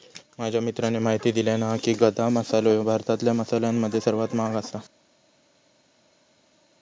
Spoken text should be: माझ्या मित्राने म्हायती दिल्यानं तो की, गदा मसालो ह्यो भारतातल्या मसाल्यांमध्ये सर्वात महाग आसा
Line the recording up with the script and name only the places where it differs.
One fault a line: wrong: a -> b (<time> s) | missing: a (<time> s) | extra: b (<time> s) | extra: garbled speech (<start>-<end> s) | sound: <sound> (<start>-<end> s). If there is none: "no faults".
wrong: तो -> हा (1.6 s)